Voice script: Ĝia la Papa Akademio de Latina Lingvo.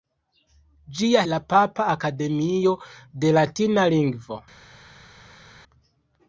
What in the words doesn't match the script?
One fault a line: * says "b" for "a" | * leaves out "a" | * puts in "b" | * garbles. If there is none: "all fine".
all fine